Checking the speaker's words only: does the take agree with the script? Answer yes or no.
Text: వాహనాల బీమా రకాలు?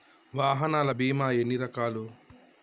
no